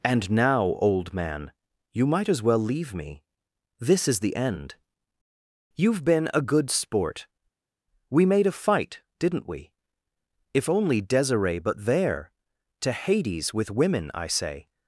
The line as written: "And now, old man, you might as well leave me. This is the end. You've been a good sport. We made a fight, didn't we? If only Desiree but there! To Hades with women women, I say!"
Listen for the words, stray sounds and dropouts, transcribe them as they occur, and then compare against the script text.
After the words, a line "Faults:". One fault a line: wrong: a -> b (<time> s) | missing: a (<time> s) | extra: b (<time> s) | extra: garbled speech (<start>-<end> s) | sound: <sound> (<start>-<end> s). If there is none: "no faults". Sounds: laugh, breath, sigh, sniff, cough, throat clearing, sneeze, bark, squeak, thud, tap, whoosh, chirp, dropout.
"And now, old man, you might as well leave me. This is the end. You've been a good sport. We made a fight, didn't we? If only Desiree but there! To Hades with women, I say!"
Faults:
missing: women (14.1 s)